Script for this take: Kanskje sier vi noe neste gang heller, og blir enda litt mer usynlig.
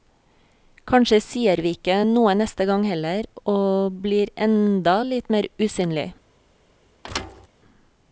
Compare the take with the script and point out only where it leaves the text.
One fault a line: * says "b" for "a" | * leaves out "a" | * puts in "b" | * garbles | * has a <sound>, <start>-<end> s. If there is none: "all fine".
* puts in "ikke"
* has a thud, 7.0-7.5 s